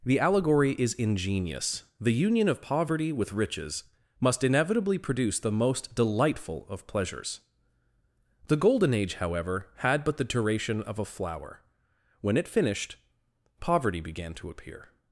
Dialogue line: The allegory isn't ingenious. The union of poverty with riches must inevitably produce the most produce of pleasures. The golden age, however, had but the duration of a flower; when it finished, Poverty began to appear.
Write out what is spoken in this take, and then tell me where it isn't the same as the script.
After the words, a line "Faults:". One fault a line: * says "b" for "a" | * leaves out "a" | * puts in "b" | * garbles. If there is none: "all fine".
The allegory is ingenious. The union of poverty with riches must inevitably produce the most delightful of pleasures. The golden age, however, had but the duration of a flower; when it finished, Poverty began to appear.
Faults:
* says "is" for "isn't"
* says "delightful" for "produce"